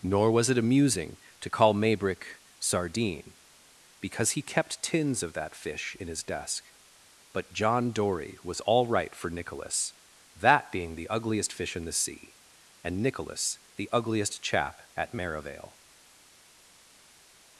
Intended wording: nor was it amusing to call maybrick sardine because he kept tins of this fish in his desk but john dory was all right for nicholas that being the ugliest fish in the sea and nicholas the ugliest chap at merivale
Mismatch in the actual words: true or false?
true